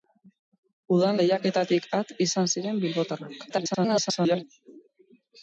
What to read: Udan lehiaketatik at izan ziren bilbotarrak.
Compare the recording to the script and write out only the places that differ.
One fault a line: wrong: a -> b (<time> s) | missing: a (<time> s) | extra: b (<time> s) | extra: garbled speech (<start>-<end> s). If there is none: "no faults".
extra: garbled speech (3.5-4.4 s)